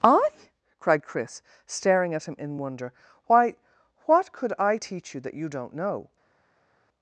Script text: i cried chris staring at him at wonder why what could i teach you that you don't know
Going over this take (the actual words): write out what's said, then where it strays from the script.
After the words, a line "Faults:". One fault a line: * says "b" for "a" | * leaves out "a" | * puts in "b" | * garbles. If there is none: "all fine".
i cried chris staring at him in wonder why what could i teach you that you don't know
Faults:
* says "in" for "at"